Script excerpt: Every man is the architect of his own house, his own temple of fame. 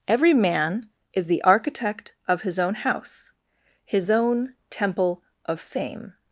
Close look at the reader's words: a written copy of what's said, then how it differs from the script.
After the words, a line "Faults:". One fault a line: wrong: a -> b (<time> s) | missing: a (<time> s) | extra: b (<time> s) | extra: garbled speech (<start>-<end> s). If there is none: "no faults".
Every man is the architect of his own house, his own temple of fame.
Faults:
no faults